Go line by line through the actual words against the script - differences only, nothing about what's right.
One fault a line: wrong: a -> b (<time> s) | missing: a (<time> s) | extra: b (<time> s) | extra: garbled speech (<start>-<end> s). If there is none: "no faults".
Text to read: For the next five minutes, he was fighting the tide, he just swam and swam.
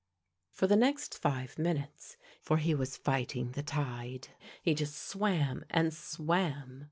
extra: for (2.4 s)